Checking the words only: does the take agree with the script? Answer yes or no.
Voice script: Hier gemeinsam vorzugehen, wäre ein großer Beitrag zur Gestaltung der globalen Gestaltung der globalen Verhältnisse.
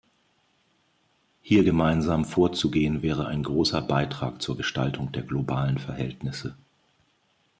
no